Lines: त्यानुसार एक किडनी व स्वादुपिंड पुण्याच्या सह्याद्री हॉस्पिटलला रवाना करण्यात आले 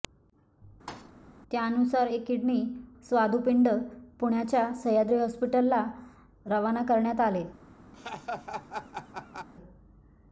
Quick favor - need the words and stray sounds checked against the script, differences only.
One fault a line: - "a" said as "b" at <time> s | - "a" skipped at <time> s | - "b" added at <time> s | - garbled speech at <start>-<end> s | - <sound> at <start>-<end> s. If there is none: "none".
- thud at 0.9-1.1 s
- "व" skipped at 2.6 s
- laugh at 7.9-9.5 s